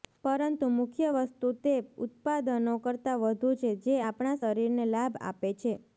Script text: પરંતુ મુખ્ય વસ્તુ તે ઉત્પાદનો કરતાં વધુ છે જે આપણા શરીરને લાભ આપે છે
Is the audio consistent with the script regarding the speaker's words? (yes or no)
yes